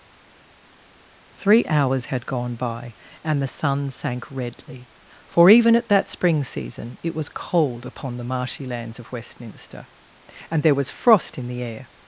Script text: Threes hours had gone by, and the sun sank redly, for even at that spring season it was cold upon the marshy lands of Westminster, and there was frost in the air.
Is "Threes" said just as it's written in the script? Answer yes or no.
no